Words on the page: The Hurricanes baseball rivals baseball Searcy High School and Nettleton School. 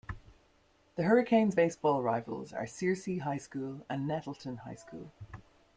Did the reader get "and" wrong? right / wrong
right